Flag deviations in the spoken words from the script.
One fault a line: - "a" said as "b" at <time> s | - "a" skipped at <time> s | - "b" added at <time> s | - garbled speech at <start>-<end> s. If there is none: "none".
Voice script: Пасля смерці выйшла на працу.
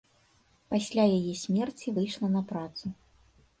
- "яе" added at 1.2 s